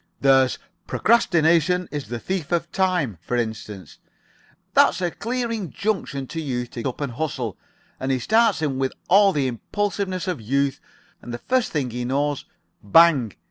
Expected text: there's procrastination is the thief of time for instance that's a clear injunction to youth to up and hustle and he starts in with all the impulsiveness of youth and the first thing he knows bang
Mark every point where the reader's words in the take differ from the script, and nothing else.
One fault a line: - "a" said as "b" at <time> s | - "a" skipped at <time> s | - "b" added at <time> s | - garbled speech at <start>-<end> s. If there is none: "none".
none